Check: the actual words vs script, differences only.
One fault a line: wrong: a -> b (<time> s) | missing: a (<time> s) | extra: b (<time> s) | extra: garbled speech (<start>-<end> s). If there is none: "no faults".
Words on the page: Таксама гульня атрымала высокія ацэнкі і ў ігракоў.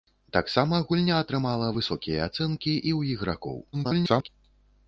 extra: garbled speech (3.7-4.3 s)